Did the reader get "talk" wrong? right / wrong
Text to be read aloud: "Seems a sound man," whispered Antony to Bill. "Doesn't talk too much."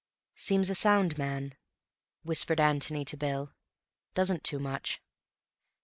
wrong